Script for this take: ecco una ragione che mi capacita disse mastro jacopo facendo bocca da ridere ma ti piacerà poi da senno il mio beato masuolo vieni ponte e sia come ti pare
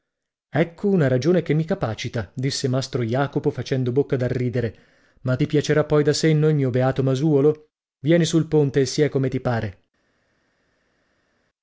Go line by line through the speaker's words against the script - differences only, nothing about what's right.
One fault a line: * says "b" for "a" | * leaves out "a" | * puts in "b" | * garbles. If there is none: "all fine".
* puts in "sul"